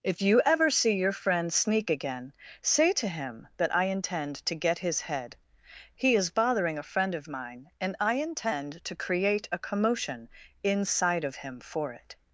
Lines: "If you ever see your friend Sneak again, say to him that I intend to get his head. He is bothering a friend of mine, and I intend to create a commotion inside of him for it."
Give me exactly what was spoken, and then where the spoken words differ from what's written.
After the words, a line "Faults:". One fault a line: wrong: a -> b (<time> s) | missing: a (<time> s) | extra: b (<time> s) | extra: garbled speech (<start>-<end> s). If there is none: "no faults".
"If you ever see your friend Sneak again, say to him that I intend to get his head. He is bothering a friend of mine, and I intend to create a commotion inside of him for it."
Faults:
no faults